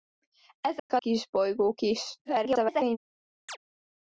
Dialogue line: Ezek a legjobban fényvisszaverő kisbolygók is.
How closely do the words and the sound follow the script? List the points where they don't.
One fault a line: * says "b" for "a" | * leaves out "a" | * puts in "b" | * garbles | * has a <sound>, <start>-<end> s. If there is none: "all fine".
* has a dropout, 0.8-0.9 s
* leaves out "legjobban fényvisszaverő"
* garbles
* has a chirp, 3.5-3.6 s